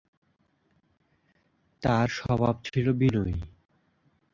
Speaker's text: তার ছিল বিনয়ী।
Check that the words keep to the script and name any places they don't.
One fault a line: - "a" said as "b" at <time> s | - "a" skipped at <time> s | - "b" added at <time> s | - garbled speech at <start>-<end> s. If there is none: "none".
- "স্বভাব" added at 2.1 s